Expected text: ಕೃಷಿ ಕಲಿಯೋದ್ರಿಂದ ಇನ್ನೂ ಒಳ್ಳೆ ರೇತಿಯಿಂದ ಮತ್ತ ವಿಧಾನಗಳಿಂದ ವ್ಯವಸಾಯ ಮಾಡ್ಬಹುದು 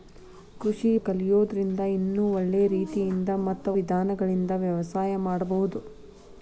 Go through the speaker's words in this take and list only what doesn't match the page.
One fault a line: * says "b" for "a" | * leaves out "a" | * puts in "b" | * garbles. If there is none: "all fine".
all fine